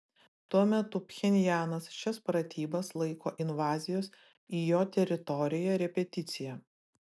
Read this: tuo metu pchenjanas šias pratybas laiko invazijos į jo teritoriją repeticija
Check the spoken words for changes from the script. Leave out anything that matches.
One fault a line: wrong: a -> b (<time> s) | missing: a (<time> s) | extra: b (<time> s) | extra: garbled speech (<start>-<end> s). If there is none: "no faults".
no faults